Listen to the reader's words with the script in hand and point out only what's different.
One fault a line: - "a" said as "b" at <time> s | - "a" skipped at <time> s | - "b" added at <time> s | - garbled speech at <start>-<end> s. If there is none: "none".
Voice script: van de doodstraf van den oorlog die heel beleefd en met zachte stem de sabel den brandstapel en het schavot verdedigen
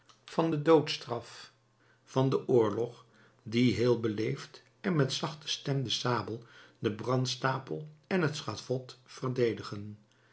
none